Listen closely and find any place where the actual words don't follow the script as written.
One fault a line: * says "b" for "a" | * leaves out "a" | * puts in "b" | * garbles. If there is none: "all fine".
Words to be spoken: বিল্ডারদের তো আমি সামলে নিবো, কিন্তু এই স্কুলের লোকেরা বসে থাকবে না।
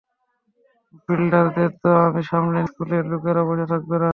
* leaves out "নিবো কিন্তু এই"